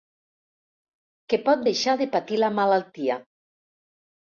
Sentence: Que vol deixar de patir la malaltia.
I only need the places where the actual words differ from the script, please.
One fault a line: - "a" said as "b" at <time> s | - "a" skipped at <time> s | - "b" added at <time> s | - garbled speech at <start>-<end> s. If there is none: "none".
- "vol" said as "pot" at 1.5 s